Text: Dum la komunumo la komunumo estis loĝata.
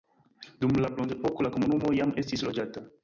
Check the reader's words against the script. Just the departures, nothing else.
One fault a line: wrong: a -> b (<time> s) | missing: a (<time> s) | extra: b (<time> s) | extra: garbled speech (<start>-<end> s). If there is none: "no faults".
wrong: komunumo -> bronzepoko (0.9 s)
extra: jam (2.0 s)